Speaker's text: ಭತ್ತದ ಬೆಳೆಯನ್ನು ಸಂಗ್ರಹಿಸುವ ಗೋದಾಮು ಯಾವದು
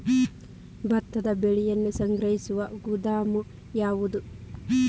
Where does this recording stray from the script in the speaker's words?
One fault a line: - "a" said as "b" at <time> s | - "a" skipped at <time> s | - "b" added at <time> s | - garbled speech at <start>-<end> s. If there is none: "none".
none